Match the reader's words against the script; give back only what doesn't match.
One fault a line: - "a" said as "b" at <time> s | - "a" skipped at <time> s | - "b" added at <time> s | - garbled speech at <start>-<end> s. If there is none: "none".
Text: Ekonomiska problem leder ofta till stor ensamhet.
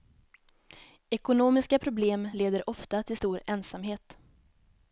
none